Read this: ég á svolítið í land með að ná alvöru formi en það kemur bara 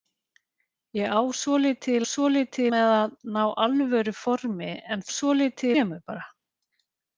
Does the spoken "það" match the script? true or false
false